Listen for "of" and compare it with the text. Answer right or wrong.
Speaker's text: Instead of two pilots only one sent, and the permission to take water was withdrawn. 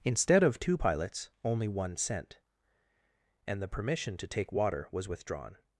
right